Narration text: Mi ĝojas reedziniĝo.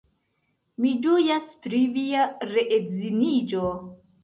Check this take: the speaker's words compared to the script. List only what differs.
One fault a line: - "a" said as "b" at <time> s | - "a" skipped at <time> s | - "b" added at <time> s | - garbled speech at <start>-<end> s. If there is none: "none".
- "pri via" added at 1.7 s